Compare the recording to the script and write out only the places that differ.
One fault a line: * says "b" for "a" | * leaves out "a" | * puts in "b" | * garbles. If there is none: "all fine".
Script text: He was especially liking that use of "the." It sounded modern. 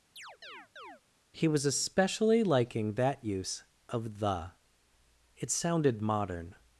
all fine